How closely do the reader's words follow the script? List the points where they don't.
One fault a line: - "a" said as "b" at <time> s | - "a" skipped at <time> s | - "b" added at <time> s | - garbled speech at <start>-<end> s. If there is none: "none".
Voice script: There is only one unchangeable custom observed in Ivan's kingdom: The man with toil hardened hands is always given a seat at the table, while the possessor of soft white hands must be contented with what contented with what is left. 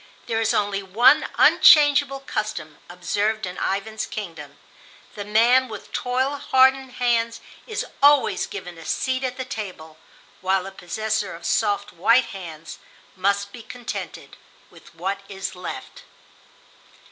- "contented with what" skipped at 15.2 s